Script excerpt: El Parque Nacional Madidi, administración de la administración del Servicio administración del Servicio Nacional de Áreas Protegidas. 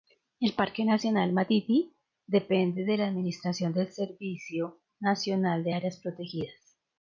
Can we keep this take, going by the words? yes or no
no